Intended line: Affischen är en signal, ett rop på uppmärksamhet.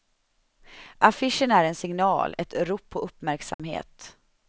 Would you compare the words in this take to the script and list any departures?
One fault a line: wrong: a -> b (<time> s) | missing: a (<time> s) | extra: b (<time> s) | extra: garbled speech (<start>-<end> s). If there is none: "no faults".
no faults